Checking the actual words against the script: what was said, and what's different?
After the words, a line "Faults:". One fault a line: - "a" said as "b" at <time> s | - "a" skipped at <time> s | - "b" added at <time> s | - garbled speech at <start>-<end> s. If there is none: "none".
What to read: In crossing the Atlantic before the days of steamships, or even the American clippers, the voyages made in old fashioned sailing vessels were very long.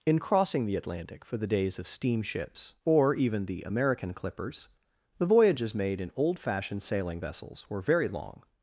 In crossing the Atlantic for the days of steamships, or even the American clippers, the voyages made in old fashioned sailing vessels were very long.
Faults:
- "before" said as "for" at 1.2 s